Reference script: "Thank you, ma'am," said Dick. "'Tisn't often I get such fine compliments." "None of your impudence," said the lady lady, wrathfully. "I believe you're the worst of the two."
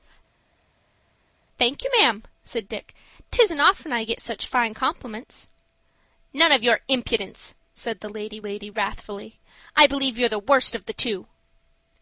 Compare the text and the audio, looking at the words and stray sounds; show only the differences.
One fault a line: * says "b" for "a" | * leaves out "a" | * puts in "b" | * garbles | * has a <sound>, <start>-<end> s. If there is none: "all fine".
all fine